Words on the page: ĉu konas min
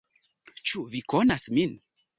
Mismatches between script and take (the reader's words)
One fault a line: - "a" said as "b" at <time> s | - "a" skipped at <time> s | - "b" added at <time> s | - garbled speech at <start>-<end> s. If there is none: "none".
- "vi" added at 0.9 s